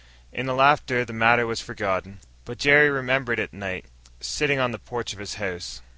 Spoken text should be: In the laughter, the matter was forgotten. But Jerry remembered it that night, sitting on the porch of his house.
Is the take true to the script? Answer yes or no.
no